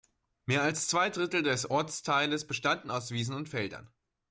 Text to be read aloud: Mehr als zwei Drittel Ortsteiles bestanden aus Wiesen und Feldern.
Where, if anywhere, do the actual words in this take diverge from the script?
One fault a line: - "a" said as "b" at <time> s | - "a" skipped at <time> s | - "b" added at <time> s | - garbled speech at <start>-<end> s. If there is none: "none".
- "des" added at 1.4 s